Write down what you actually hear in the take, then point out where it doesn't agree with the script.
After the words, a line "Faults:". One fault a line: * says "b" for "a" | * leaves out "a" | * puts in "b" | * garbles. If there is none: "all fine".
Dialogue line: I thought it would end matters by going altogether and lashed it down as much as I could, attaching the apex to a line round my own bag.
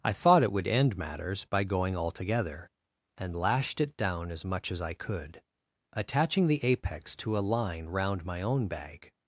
I thought it would end matters by going altogether and lashed it down as much as I could, attaching the apex to a line round my own bag.
Faults:
all fine